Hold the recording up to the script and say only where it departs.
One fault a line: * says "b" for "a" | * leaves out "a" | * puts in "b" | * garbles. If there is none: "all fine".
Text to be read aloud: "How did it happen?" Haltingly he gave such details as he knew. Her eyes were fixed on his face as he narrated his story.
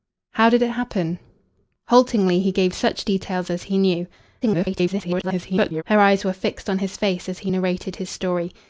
* garbles